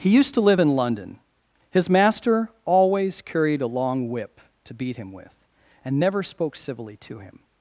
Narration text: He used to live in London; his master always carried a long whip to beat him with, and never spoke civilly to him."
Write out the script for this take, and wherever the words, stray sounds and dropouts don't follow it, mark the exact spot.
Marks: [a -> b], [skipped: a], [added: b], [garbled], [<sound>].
He used to live in London; his master always carried a long whip to beat him with, and never spoke civilly to him."